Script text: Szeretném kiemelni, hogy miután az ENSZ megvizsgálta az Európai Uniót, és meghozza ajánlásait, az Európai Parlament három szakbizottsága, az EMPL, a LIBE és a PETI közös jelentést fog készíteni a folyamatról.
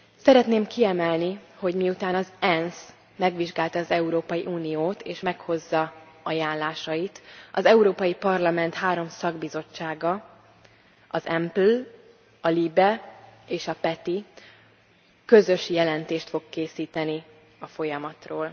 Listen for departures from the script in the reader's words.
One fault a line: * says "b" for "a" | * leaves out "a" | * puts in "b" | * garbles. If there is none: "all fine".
all fine